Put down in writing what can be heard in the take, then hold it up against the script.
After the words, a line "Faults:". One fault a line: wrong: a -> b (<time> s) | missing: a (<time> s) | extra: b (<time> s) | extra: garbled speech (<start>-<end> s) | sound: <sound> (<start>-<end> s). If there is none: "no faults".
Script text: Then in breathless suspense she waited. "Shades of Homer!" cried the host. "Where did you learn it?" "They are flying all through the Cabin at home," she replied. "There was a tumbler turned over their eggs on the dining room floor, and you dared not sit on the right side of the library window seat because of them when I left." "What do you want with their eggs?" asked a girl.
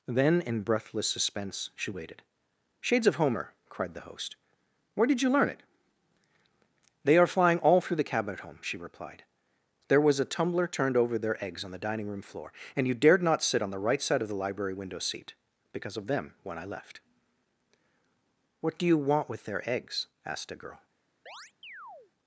Then in breathless suspense she waited. "Shades of Homer!" cried the host. "Where did you learn it?" "They are flying all through the Cabin at home," she replied. "There was a tumbler turned over their eggs on the dining room floor, and you dared not sit on the right side of the library window seat because of them when I left." "What do you want with their eggs?" asked a girl.
Faults:
sound: chirp (21.3-22.1 s)